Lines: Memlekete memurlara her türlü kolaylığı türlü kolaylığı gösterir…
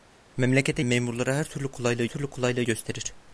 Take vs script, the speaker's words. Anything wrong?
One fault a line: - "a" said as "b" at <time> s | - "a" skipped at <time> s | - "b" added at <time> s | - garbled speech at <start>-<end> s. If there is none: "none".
none